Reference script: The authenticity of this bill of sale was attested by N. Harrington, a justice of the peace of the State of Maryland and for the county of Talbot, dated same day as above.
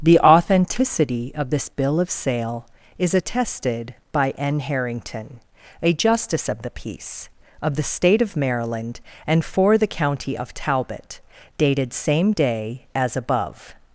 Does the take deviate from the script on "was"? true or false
true